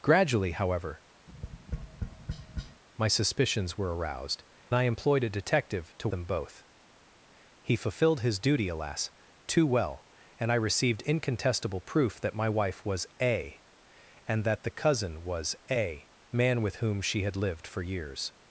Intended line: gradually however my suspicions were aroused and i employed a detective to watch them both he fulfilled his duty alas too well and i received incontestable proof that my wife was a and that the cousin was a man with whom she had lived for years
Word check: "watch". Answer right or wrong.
wrong